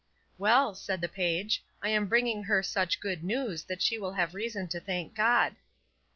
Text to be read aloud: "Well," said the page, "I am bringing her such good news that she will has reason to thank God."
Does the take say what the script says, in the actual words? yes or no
no